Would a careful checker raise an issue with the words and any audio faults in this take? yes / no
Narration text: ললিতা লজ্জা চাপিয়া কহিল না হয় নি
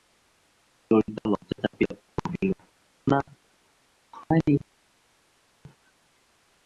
no